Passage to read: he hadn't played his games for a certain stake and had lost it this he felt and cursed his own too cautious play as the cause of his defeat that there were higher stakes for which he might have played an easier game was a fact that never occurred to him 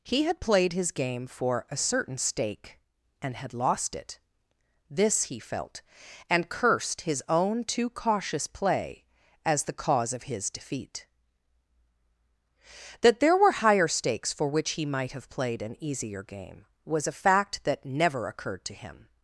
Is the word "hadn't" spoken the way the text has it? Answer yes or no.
no